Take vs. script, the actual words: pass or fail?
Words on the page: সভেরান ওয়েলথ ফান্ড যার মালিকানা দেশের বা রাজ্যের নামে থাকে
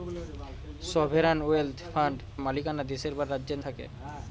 fail